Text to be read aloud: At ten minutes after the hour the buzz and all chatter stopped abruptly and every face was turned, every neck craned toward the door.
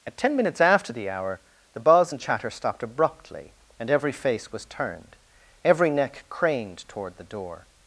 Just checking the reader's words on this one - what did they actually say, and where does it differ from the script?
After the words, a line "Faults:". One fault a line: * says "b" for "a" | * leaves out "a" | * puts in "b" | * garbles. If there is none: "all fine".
At ten minutes after the hour the buzz and chatter stopped abruptly and every face was turned, every neck craned toward the door.
Faults:
* leaves out "all"